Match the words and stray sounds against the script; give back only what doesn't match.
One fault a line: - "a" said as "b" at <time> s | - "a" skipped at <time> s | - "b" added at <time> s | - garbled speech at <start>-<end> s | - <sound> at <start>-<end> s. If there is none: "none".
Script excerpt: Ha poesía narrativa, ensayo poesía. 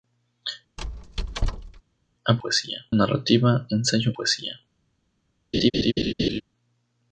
- squeak at 0.8-1.8 s
- laugh at 5.5-6.4 s